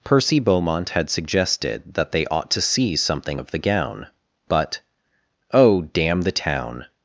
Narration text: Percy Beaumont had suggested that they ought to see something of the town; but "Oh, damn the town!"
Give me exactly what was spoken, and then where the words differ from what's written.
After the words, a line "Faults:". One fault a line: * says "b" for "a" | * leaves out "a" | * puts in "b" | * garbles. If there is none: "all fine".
Percy Beaumont had suggested that they ought to see something of the gown; but "Oh, damn the town!"
Faults:
* says "gown" for "town"